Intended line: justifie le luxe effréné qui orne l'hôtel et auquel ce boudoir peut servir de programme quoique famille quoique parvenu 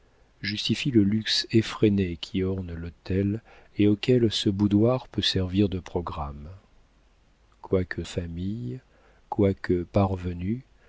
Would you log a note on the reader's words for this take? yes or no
no